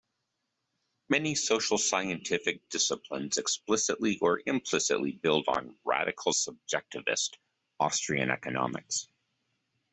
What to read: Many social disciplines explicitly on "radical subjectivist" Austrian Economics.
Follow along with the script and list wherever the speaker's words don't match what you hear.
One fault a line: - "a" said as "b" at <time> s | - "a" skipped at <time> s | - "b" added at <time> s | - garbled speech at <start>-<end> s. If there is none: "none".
- "scientific" added at 1.8 s
- "or implicitly build" added at 4.2 s